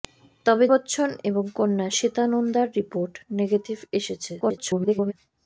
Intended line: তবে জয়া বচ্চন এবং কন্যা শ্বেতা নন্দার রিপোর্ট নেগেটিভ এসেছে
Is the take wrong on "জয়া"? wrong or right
wrong